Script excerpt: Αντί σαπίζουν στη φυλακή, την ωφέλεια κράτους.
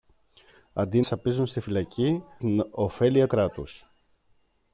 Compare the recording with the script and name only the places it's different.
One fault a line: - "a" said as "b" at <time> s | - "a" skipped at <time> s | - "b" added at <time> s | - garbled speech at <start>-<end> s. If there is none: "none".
none